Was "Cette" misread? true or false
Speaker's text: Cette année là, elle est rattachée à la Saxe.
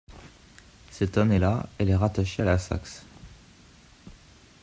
false